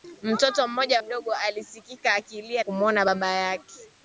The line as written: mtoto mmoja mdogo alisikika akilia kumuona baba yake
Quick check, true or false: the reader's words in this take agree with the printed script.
true